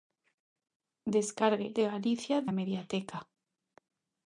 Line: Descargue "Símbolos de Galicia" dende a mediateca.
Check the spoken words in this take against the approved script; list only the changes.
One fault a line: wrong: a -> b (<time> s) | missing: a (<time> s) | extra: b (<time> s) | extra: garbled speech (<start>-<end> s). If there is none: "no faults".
missing: Símbolos (1.7 s)
missing: dende (2.4 s)